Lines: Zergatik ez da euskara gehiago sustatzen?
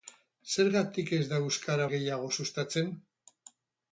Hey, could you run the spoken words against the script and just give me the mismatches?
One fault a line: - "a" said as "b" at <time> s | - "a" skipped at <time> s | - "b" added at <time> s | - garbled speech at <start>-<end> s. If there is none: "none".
none